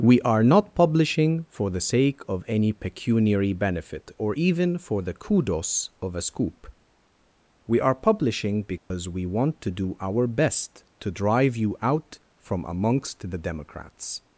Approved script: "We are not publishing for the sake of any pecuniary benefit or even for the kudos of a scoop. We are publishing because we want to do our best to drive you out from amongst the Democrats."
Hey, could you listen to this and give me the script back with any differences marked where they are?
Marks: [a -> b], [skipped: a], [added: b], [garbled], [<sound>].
"We are not publishing for the sake of any pecuniary benefit or even for the kudos of a scoop. We are publishing because [dropout] we want to do our best to drive you out from amongst the Democrats."